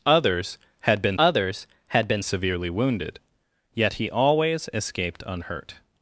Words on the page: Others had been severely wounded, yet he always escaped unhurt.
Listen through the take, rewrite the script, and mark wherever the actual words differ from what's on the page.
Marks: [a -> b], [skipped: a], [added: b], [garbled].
Others had been [added: others had been] severely wounded, yet he always escaped unhurt.